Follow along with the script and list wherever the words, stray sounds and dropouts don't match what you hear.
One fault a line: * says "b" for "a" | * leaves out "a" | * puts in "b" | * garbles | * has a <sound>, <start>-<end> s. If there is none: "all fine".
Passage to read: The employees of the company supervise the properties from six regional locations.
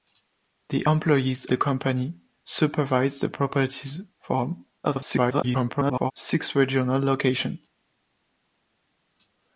* leaves out "of"
* garbles